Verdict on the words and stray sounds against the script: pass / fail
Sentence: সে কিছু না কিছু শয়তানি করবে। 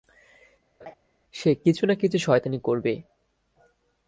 fail